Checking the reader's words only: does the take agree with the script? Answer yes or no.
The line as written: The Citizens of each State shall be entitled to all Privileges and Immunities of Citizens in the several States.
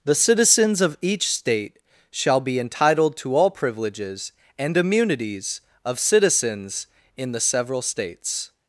yes